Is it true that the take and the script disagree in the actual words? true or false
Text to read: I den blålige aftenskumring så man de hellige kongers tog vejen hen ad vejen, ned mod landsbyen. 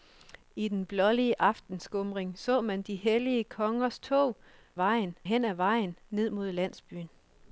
false